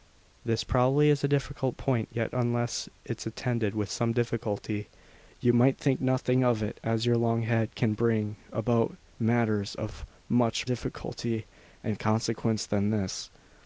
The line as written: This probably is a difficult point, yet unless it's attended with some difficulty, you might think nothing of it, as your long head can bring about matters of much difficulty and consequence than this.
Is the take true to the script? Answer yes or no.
yes